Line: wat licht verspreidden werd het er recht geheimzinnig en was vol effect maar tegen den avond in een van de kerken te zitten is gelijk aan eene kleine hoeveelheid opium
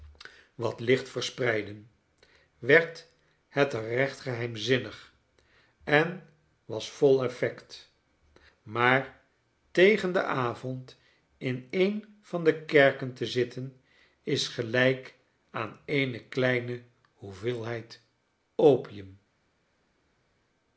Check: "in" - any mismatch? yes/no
no